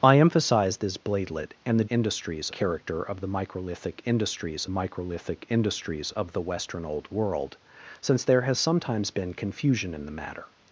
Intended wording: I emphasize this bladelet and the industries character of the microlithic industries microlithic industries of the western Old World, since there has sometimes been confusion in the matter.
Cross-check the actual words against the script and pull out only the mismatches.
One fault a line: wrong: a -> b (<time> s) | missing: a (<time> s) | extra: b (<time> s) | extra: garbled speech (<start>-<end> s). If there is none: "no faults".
no faults